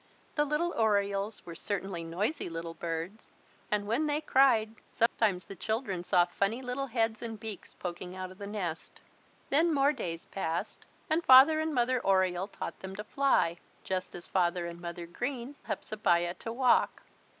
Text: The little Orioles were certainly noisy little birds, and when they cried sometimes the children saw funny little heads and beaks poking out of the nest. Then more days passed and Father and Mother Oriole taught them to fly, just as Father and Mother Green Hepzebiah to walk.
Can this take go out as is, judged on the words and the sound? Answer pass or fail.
fail